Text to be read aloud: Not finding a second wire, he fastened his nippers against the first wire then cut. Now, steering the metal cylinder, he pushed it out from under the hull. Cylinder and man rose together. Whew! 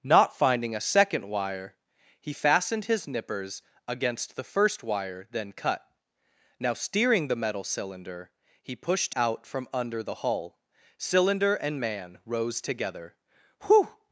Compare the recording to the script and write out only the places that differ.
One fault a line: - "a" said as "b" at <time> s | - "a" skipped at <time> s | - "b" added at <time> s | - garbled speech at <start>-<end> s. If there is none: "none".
- "it" skipped at 9.2 s